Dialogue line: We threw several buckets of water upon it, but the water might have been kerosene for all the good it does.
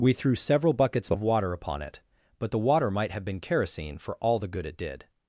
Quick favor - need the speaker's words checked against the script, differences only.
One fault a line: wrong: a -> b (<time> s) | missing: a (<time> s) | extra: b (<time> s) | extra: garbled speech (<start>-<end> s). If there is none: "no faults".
wrong: does -> did (4.8 s)